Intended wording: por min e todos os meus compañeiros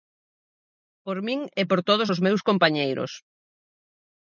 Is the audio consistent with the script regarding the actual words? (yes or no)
no